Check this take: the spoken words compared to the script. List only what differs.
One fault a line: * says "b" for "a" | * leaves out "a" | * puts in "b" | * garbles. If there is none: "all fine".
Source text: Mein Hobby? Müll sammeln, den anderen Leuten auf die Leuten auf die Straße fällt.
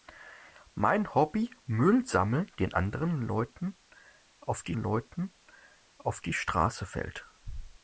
all fine